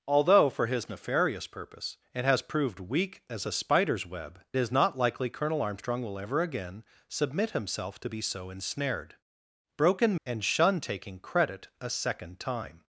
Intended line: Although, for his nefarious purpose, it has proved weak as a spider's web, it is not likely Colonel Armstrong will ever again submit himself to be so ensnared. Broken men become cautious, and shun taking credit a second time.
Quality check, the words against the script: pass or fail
fail